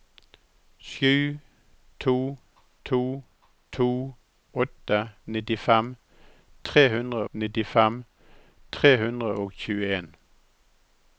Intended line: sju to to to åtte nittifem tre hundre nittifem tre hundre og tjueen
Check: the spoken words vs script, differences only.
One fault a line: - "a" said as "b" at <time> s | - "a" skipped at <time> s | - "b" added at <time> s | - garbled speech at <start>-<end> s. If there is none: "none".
none